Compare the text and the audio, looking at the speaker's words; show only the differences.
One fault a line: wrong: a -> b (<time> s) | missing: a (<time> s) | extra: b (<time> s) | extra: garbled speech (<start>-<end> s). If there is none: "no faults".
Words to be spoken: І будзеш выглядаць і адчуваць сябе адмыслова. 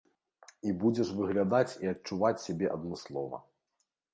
no faults